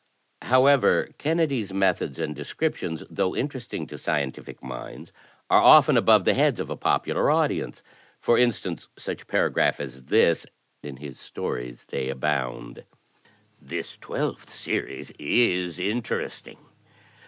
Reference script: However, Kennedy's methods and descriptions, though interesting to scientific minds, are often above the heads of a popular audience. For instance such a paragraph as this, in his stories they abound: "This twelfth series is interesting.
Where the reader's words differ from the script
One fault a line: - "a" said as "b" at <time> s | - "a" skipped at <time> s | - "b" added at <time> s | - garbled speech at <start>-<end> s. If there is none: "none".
none